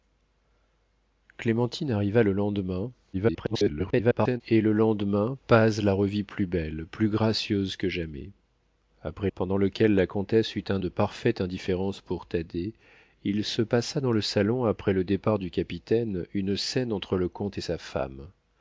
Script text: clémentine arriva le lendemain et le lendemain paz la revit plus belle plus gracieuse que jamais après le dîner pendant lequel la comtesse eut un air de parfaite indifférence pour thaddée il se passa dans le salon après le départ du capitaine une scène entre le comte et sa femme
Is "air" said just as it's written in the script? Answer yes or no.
no